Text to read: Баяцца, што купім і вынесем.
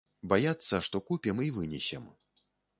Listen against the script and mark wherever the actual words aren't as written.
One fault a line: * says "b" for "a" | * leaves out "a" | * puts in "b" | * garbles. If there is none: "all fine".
all fine